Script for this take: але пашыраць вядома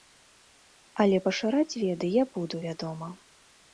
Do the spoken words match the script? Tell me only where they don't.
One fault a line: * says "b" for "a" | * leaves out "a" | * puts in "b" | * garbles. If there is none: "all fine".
* puts in "веды я буду"